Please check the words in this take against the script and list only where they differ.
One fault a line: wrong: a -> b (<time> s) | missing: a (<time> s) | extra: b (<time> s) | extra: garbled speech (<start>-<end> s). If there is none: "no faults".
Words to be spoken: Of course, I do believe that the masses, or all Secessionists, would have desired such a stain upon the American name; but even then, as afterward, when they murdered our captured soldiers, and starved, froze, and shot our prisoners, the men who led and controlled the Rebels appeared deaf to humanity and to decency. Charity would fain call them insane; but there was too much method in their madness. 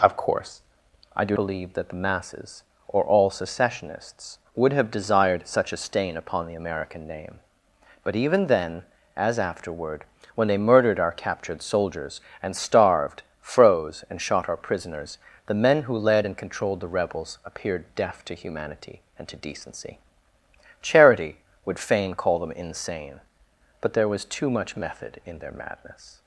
no faults